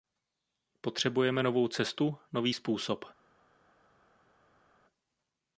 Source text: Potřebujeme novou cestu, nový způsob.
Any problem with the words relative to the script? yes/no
no